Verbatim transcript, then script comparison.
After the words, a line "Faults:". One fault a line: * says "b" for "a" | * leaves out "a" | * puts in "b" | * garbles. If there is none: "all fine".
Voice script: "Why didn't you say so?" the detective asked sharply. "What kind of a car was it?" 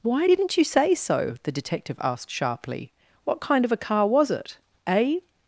"Why didn't you say so?" the detective asked sharply. "What kind of a car was it?" "A
Faults:
* puts in "A"